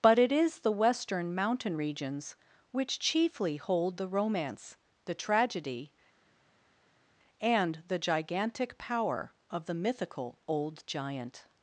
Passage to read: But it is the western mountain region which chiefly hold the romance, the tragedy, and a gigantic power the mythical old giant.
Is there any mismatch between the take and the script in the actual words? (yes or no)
yes